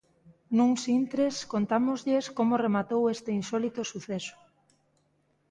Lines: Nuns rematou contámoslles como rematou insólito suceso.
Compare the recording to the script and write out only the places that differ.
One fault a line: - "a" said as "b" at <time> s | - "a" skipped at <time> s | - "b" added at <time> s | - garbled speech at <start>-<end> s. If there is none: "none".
- "rematou" said as "intres" at 1.0 s
- "este" added at 3.1 s